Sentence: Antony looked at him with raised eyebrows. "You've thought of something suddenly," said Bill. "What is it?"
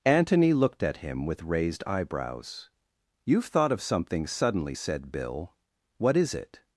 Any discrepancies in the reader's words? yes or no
no